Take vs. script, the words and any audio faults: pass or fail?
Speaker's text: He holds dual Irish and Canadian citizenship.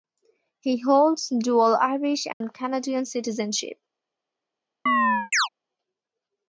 fail